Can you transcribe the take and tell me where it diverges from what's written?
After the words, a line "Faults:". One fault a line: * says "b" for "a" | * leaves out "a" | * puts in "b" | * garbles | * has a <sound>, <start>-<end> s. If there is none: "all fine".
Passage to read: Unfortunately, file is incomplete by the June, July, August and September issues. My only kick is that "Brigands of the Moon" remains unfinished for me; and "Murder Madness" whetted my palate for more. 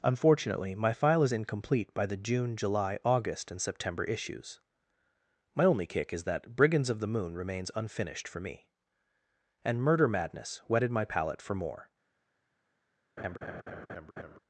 Unfortunately, my file is incomplete by the June, July, August and September issues. My only kick is that "Brigands of the Moon" remains unfinished for me; and "Murder Madness" whetted my palate for more.
Faults:
* puts in "my"
* has a laugh, 13.2-14.4 s